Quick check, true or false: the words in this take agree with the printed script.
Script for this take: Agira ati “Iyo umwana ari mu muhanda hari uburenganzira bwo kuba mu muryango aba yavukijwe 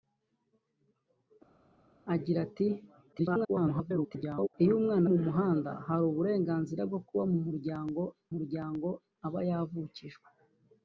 false